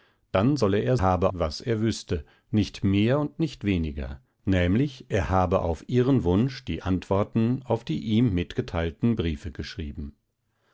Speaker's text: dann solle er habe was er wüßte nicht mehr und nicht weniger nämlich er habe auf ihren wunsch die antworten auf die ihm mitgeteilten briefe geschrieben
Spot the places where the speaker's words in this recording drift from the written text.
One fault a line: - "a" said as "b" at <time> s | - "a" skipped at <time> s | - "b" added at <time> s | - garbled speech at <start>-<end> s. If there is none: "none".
none